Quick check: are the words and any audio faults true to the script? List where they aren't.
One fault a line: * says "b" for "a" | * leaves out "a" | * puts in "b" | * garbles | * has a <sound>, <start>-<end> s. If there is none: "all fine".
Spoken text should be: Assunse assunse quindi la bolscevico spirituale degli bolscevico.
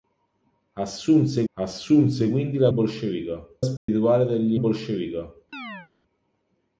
* has a dropout, 3.8-3.9 s
* has a chirp, 5.5-5.9 s